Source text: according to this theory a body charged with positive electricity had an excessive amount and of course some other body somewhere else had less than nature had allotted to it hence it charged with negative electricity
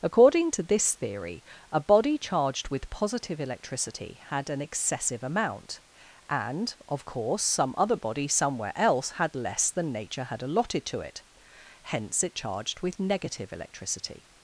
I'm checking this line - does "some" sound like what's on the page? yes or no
yes